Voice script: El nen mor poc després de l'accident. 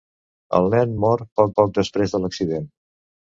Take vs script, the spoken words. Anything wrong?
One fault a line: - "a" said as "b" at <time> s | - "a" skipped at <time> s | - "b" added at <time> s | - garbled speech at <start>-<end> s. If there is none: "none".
- "poc" added at 1.6 s